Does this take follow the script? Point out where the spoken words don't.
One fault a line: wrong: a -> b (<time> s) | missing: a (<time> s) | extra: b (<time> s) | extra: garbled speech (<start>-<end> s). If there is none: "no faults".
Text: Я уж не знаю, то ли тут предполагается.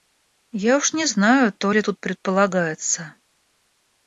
no faults